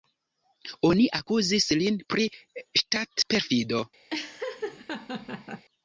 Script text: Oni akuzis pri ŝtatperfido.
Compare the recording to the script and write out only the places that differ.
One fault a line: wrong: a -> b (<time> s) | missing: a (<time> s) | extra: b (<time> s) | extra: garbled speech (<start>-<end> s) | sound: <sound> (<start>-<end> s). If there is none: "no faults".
extra: lin (1.8 s)
sound: laugh (4.1-5.7 s)